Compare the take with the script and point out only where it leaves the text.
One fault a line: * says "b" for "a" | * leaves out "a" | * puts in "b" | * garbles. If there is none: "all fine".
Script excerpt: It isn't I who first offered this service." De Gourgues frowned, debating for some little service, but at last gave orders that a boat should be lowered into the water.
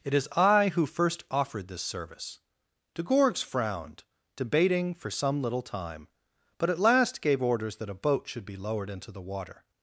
* says "is" for "isn't"
* says "time" for "service"